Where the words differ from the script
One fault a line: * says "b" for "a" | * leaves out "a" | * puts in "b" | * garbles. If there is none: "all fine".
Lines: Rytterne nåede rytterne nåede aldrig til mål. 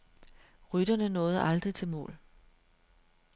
* leaves out "rytterne nåede"